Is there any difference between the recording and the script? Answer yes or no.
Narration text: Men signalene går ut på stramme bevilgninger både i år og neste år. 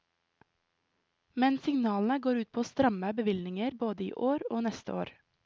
no